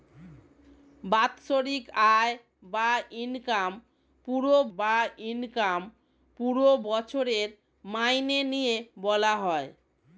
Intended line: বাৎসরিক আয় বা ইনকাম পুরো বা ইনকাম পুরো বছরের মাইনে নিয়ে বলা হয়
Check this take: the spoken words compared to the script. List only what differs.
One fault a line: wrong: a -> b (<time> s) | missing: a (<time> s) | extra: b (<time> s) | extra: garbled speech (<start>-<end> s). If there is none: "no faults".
no faults